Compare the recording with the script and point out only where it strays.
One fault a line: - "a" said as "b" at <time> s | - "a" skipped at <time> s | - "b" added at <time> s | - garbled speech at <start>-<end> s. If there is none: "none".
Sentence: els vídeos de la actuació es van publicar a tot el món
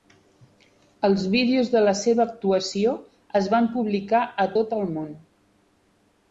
- "seva" added at 2.0 s